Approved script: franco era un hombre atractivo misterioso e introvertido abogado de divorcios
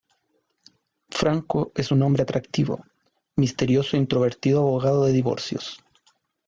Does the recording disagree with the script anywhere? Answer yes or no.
yes